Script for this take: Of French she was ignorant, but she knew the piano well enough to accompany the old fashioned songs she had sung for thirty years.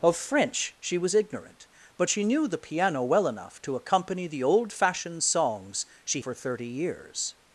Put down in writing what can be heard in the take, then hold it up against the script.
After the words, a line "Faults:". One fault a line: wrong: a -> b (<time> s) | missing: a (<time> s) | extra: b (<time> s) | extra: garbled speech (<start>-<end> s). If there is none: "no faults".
Of French she was ignorant, but she knew the piano well enough to accompany the old fashioned songs she for thirty years.
Faults:
missing: had sung (6.2 s)